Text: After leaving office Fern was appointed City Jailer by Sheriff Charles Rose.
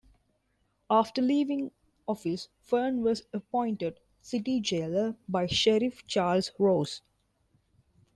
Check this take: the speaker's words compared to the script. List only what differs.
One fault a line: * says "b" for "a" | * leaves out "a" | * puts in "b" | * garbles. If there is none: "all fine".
all fine